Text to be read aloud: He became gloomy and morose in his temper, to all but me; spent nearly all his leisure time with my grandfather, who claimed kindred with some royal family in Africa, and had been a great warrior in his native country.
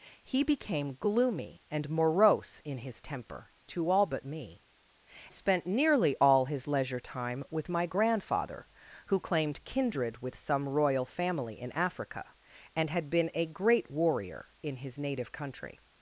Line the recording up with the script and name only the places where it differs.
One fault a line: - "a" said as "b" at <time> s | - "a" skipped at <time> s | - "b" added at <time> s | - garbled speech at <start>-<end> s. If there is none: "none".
none